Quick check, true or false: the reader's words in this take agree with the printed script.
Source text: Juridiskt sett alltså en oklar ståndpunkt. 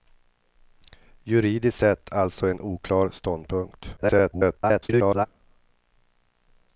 false